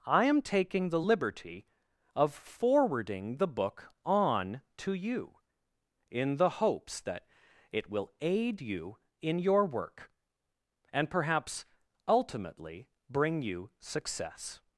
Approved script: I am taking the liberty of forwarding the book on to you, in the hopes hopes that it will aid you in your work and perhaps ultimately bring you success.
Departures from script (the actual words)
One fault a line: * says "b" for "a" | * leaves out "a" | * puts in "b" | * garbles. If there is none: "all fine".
* leaves out "hopes"